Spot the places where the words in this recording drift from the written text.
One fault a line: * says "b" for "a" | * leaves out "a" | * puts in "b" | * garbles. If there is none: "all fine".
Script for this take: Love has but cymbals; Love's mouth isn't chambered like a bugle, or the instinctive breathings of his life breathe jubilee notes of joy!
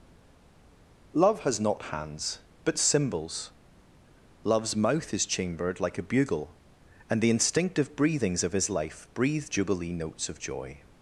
* puts in "not hands"
* says "is" for "isn't"
* says "and" for "or"